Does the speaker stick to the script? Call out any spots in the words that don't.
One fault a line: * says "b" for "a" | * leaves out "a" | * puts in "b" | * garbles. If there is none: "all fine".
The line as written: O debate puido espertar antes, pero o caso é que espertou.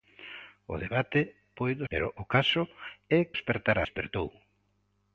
* leaves out "espertar antes"
* says "espertar" for "que"